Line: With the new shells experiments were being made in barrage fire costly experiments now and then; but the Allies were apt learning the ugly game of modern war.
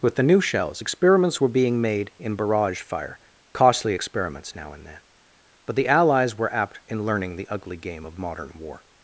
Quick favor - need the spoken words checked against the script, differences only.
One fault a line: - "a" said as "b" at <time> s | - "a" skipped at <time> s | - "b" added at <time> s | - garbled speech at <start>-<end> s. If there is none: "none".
- "in" added at 6.9 s